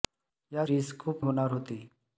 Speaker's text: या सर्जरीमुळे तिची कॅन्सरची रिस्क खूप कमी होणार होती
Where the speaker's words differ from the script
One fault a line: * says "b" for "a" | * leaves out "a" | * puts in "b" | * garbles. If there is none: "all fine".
* leaves out "सर्जरीमुळे तिची कॅन्सरची"
* leaves out "कमी"